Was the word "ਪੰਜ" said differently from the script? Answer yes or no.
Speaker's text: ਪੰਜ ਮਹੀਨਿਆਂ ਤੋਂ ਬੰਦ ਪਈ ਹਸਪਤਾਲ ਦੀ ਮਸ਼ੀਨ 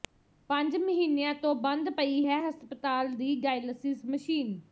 no